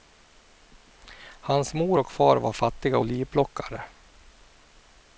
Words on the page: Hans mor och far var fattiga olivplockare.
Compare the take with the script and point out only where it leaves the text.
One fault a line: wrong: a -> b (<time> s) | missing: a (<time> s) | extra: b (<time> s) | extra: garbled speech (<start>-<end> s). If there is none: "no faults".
no faults